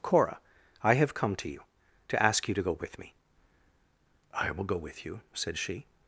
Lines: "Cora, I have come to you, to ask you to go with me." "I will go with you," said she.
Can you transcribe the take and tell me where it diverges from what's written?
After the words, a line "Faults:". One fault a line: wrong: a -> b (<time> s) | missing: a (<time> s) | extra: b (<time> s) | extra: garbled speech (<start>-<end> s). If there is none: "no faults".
"Cora, I have come to you, to ask you to go with me." "I will go with you," said she.
Faults:
no faults